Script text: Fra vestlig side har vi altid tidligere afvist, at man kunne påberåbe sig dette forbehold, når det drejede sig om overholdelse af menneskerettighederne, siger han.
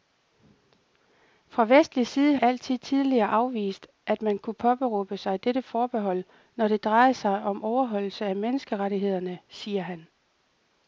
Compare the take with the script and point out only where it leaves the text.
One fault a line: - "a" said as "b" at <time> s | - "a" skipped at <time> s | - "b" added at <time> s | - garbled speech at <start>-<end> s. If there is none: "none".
- "har vi" skipped at 2.4 s